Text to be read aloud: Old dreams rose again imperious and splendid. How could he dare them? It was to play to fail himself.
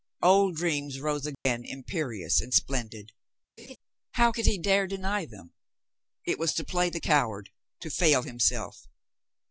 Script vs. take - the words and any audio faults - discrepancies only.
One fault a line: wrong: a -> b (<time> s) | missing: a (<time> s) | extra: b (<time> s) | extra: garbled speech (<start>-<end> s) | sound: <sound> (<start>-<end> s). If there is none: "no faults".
sound: dropout (1.3-1.5 s)
sound: laugh (3.6-3.8 s)
extra: deny (4.9 s)
extra: the coward (6.9 s)